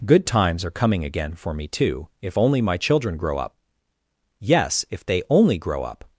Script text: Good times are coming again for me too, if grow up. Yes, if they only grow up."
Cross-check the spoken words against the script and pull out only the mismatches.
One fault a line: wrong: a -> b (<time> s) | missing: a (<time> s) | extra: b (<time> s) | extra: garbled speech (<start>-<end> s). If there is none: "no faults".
extra: only my children (2.4 s)